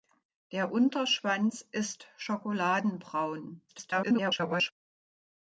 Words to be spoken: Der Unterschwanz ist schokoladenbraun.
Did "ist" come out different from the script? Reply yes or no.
no